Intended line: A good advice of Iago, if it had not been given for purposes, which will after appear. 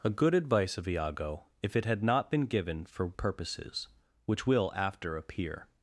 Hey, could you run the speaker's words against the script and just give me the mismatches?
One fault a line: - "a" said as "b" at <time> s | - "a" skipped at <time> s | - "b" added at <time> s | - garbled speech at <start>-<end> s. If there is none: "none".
none